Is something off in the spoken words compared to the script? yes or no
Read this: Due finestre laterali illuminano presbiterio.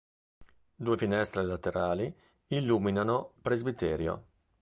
no